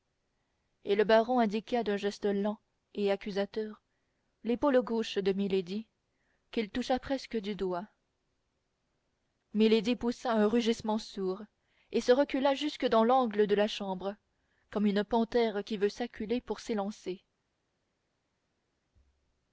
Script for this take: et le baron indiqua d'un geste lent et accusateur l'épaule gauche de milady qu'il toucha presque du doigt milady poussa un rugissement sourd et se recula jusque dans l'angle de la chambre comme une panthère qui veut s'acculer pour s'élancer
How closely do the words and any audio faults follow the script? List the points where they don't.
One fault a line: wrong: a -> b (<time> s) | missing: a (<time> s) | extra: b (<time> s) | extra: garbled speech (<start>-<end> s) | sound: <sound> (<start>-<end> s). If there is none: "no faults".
no faults